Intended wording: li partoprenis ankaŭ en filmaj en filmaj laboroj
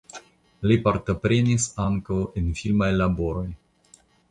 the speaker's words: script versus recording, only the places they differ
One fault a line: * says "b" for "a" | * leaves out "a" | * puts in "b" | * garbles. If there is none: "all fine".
* leaves out "en filmaj"